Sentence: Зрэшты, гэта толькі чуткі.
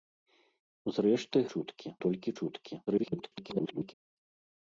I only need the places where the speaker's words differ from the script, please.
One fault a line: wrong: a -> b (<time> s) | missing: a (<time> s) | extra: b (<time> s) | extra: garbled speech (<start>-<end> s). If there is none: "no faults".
wrong: гэта -> чуткі (1.5 s)
extra: garbled speech (2.9-3.9 s)